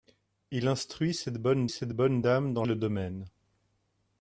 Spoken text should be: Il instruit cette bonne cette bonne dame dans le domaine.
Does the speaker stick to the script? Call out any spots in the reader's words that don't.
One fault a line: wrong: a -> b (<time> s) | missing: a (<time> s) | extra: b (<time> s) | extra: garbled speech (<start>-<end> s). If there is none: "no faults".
no faults